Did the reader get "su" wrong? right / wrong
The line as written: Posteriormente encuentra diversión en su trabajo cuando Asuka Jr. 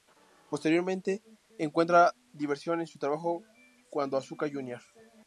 right